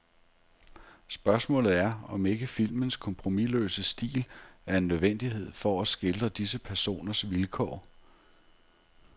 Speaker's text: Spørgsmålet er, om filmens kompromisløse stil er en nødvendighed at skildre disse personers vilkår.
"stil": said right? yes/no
yes